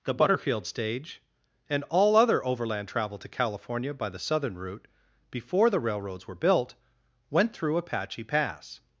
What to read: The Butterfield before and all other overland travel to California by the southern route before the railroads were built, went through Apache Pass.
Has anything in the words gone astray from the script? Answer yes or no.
yes